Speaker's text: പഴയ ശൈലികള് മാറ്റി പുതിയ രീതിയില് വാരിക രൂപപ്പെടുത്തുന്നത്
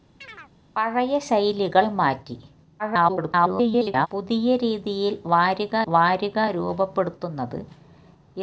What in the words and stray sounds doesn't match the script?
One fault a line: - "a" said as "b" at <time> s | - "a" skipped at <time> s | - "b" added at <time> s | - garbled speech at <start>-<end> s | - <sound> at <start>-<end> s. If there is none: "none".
- chirp at 0.2-0.5 s
- garbled speech at 2.8-4.1 s
- "വാരിക" added at 5.9 s